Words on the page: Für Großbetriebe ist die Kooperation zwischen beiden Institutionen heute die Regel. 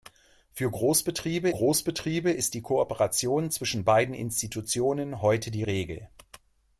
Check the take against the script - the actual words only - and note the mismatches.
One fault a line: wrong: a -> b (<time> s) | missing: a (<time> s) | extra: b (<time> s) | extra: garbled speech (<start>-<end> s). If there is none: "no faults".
extra: Großbetriebe (1.5 s)